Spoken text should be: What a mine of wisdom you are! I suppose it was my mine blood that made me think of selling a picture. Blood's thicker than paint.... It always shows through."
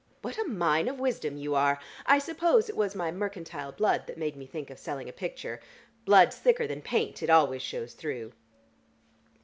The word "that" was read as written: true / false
true